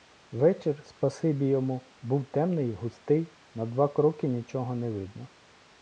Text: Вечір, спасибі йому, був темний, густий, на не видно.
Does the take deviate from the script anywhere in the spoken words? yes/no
yes